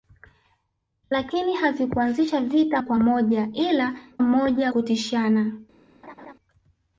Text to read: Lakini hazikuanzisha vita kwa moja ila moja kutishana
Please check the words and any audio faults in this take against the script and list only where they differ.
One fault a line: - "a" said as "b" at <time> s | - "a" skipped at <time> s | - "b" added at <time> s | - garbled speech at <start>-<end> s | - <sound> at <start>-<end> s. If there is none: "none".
- laugh at 6.0-6.3 s